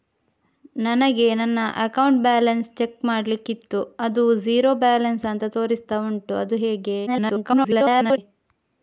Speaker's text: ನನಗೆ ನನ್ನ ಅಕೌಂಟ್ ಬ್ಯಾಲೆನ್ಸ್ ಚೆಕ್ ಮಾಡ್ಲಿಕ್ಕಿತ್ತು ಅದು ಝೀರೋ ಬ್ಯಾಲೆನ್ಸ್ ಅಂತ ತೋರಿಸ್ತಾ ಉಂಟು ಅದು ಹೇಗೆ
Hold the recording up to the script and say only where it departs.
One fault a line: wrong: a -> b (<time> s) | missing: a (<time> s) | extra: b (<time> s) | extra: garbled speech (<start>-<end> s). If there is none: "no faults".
extra: garbled speech (7.1-8.2 s)